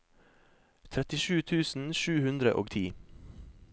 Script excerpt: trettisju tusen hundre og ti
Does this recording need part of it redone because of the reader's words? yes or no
yes